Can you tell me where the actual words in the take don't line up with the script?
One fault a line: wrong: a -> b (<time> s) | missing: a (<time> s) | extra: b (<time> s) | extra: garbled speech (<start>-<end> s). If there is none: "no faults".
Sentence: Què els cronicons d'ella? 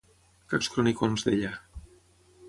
no faults